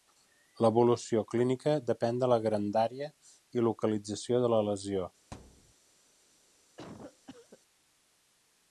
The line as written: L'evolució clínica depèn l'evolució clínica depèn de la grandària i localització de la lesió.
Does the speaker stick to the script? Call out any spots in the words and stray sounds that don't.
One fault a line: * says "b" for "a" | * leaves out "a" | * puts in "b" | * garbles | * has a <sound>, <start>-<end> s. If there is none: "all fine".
* leaves out "l'evolució clínica depèn"
* has a thud, 5.3-5.7 s
* has a cough, 6.8-7.6 s